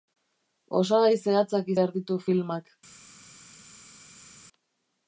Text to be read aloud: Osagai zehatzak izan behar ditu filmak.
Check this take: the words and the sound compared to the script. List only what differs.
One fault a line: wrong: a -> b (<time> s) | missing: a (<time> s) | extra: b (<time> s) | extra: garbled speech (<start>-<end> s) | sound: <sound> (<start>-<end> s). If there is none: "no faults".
missing: izan (1.7 s)